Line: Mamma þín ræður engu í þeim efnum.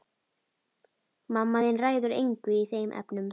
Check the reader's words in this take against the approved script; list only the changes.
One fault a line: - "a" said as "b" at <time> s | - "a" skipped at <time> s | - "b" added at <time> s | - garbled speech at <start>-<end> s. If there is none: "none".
none